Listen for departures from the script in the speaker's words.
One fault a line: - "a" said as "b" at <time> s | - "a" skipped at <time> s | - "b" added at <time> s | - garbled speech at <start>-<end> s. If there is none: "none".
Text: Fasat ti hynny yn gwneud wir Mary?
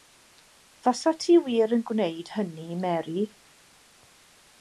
- "hynny" said as "wir" at 1.5 s
- "wir" said as "hynny" at 2.4 s